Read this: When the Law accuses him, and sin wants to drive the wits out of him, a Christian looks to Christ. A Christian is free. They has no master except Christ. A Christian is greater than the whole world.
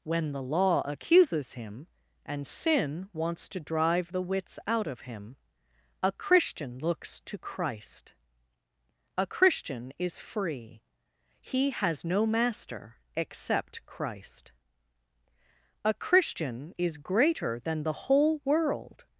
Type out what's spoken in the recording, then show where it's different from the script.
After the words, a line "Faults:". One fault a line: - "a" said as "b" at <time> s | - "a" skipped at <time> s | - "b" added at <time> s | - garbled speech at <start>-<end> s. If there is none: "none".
When the Law accuses him, and sin wants to drive the wits out of him, a Christian looks to Christ. A Christian is free. He has no master except Christ. A Christian is greater than the whole world.
Faults:
- "They" said as "He" at 11.4 s